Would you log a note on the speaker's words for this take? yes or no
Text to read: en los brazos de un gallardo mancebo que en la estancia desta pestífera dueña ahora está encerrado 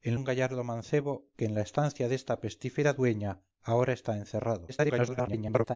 yes